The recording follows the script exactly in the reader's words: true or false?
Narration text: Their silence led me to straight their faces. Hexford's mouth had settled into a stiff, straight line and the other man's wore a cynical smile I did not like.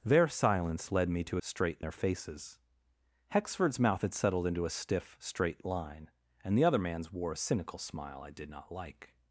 true